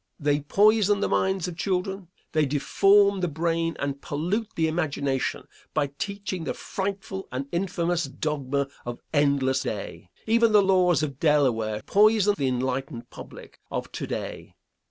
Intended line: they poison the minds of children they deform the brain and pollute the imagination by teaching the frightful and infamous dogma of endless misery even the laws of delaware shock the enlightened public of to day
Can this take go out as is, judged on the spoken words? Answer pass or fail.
fail